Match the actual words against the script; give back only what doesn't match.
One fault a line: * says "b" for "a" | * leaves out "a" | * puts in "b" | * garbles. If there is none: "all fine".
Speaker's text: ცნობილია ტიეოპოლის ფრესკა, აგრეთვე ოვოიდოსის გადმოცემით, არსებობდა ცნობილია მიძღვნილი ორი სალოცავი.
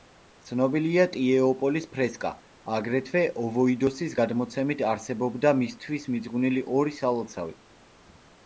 * says "მისთვის" for "ცნობილია"